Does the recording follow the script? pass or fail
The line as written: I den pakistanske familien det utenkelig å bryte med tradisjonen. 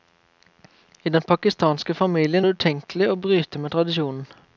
pass